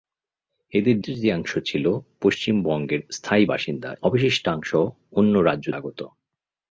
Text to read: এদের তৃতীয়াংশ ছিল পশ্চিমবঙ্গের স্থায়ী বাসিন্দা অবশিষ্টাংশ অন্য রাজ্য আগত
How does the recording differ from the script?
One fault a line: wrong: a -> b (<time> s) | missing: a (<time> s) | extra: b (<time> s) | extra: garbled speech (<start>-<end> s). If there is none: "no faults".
no faults